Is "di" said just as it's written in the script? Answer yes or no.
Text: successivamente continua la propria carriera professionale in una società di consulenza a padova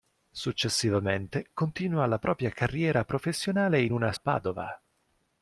no